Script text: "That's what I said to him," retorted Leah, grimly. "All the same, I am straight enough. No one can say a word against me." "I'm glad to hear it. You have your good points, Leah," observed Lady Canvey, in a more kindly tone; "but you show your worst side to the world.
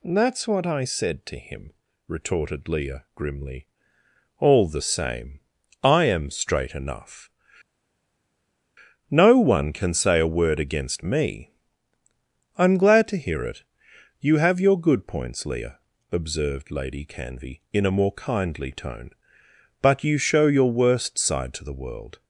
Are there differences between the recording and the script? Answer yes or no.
no